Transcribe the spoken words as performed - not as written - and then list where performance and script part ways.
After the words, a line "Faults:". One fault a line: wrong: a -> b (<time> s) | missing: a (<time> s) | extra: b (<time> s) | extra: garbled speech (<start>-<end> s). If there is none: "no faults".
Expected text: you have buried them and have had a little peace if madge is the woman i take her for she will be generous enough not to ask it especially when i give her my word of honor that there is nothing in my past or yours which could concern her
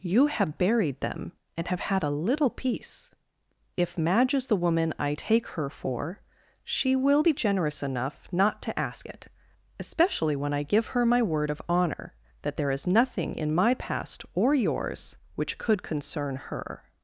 you have buried them and have had a little peace if madge is the woman i take her for she will be generous enough not to ask it especially when i give her my word of honor that there is nothing in my past or yours which could concern her
Faults:
no faults